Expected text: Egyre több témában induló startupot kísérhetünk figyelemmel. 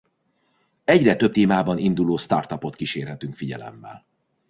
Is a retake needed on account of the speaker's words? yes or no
no